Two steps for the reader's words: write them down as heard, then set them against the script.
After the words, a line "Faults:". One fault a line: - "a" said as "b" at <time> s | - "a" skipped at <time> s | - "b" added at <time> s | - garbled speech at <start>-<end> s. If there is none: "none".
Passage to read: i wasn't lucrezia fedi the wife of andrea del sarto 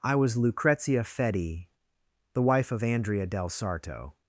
i was lucrezia fedi the wife of andrea del sarto
Faults:
- "wasn't" said as "was" at 0.1 s